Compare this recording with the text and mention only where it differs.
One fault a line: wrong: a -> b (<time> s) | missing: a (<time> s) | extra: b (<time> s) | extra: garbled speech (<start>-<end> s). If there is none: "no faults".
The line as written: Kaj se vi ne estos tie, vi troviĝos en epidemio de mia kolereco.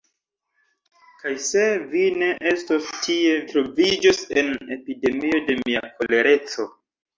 missing: vi (3.4 s)